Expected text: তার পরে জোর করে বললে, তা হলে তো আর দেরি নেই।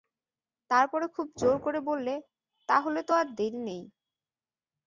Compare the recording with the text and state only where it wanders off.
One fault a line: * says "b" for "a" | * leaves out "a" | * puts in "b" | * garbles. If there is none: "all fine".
* puts in "খুব"